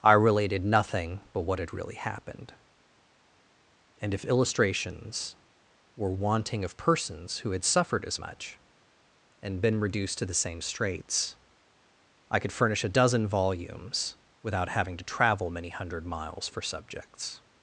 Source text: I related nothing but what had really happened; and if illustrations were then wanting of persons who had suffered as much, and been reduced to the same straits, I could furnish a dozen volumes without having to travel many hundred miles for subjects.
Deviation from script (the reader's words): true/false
true